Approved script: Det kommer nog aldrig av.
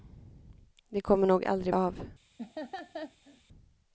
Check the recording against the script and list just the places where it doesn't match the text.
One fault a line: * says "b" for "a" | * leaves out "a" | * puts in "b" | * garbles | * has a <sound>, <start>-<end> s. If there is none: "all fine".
* has a laugh, 2.4-3.4 s